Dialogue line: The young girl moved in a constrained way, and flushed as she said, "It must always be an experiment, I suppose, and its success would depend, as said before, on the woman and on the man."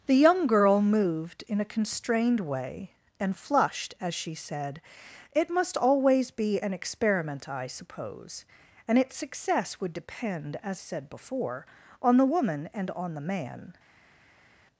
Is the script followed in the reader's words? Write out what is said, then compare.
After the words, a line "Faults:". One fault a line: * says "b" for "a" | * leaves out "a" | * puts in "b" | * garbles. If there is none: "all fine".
The young girl moved in a constrained way, and flushed as she said, "It must always be an experiment, I suppose, and its success would depend, as said before, on the woman and on the man."
Faults:
all fine